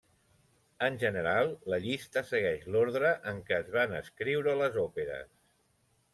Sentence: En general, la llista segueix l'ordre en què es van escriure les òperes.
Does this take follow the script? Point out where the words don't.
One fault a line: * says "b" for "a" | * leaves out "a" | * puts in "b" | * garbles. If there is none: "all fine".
all fine